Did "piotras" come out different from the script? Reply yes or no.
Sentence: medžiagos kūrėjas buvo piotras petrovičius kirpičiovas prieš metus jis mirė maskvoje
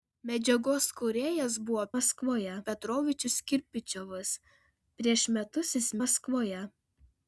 yes